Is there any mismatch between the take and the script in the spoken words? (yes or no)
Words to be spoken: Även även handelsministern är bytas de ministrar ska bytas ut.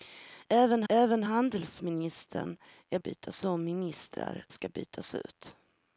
no